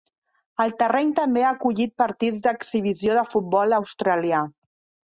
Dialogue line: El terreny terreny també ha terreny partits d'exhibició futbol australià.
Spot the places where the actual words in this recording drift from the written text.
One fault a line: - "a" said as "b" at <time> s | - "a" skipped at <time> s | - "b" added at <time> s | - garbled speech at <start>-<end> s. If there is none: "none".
- "terreny" skipped at 1.1 s
- "terreny" said as "acollit" at 1.6 s
- "de" added at 3.2 s